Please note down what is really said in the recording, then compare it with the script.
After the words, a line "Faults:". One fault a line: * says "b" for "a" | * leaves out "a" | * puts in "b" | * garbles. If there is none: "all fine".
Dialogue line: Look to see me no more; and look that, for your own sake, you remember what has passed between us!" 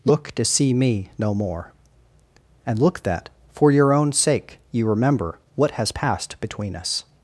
Look to see me no more; and look that, for your own sake, you remember what has passed between us!"
Faults:
all fine